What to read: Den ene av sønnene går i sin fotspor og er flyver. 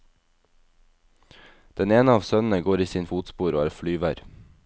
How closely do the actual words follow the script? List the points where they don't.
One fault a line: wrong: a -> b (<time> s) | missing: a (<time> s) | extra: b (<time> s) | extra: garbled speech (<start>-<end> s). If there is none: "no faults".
no faults